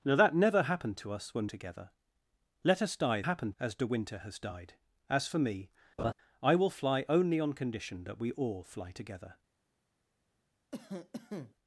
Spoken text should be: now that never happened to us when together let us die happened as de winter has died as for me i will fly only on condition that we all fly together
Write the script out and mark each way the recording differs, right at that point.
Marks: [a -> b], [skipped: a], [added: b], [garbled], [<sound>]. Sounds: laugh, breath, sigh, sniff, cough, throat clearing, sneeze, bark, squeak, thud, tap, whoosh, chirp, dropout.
now that never happened to us when together let us die happened as de winter has died as for me [laugh] i will fly only on condition that we all fly together [cough]